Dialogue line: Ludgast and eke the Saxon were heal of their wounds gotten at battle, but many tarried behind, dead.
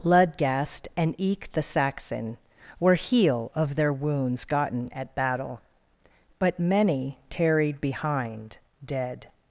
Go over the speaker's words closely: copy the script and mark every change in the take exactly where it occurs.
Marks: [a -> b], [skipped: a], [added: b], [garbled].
Ludgast and eke the Saxon were heal of their wounds gotten at battle, but many tarried behind, dead.